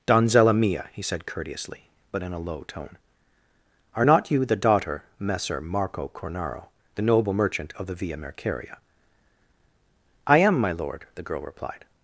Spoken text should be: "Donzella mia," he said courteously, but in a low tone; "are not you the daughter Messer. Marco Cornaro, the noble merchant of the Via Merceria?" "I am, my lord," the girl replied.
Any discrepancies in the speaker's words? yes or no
no